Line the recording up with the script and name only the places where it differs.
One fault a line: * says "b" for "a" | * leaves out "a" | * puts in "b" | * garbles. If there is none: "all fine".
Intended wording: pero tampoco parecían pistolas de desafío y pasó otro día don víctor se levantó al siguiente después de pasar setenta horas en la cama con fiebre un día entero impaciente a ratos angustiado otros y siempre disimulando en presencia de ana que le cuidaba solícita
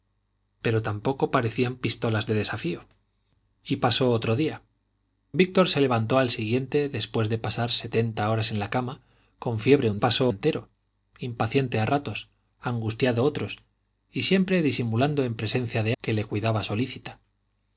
* leaves out "don"
* says "pasó" for "día"
* leaves out "ana"